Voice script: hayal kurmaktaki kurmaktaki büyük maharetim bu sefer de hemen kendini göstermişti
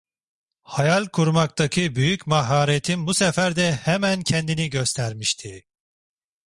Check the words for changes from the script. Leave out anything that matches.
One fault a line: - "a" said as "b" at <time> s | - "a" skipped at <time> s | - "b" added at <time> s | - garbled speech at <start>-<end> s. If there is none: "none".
- "kurmaktaki" skipped at 2.0 s